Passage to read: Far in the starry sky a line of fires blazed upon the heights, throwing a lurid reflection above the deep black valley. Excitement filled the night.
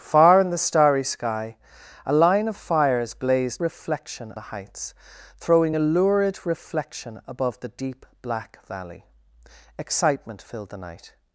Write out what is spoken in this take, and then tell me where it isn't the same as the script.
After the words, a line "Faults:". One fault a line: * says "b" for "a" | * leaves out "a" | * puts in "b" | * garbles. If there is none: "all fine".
Far in the starry sky a line of fires blazed reflection the heights, throwing a lurid reflection above the deep black valley. Excitement filled the night.
Faults:
* says "reflection" for "upon"